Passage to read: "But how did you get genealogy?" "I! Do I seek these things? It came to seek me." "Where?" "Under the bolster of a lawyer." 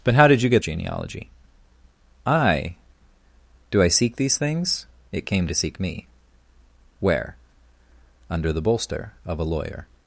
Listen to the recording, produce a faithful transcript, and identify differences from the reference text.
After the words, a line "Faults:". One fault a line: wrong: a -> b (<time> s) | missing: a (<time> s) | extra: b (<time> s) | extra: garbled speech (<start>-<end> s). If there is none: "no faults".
"But how did you get genealogy?" "I! Do I seek these things? It came to seek me." "Where?" "Under the bolster of a lawyer."
Faults:
no faults